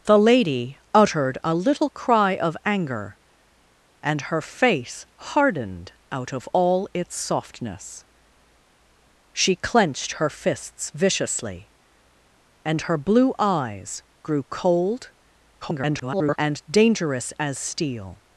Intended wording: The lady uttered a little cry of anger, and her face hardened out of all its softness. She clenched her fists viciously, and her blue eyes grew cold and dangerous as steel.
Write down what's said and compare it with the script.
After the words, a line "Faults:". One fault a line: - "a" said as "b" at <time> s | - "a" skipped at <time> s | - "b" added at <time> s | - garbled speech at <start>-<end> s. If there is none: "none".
The lady uttered a little cry of anger, and her face hardened out of all its softness. She clenched her fists viciously, and her blue eyes grew cold [garbled] and dangerous as steel.
Faults:
- garbled speech at 15.6-16.4 s